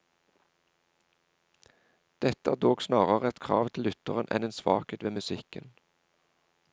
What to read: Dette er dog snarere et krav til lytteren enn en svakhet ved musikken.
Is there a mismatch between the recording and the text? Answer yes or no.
no